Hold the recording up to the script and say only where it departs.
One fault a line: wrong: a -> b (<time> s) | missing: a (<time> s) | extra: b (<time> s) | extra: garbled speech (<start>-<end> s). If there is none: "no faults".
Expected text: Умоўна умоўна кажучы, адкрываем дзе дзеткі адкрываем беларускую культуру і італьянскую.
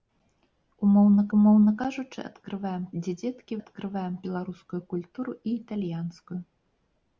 no faults